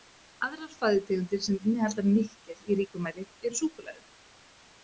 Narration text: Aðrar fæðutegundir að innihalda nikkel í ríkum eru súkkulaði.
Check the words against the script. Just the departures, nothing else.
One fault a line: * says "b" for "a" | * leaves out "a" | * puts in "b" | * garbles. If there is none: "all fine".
* says "sem" for "að"
* puts in "mæli"